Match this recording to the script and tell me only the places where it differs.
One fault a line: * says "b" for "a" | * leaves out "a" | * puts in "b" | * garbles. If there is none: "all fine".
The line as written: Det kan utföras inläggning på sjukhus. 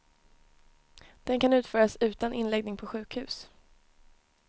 * says "Den" for "Det"
* puts in "utan"